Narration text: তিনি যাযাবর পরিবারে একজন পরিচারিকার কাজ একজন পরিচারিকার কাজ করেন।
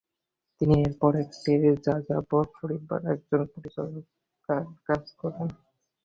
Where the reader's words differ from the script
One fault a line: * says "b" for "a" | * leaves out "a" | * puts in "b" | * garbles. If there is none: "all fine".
* puts in "এরপর একটি"
* leaves out "একজন পরিচারিকার কাজ"